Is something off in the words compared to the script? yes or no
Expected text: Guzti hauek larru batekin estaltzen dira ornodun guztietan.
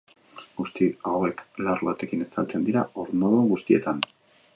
no